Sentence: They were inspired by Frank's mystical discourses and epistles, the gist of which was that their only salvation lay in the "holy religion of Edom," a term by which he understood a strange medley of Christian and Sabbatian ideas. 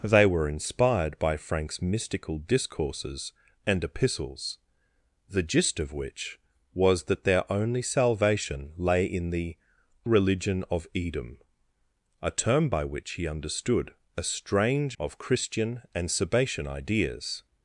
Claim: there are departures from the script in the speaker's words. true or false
true